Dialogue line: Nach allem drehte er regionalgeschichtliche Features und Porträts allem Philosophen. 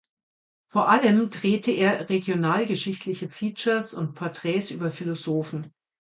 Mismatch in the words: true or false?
true